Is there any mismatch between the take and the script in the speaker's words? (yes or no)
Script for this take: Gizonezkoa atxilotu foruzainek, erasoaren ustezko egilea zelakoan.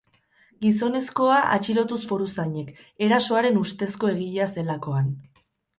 no